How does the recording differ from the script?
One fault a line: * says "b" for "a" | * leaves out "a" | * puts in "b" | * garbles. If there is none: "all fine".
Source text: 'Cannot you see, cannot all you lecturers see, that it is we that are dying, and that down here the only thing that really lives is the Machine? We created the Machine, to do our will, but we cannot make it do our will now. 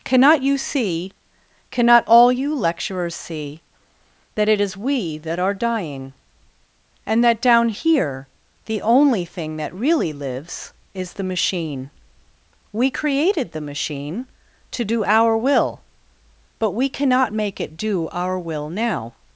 all fine